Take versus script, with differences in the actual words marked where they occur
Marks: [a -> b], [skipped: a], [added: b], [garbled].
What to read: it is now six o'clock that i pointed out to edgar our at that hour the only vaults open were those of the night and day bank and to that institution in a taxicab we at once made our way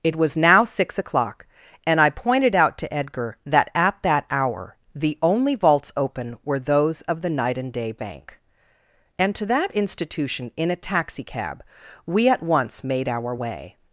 it [is -> was] now six o'clock [that -> and] i pointed out to edgar [our -> that] at that hour the only vaults open were those of the night and day bank and to that institution in a taxicab we at once made our way